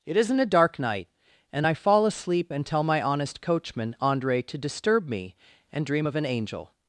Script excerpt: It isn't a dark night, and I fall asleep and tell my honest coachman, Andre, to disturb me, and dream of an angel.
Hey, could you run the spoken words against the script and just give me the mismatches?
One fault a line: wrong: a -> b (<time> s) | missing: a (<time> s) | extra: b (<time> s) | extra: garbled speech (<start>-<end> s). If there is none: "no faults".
no faults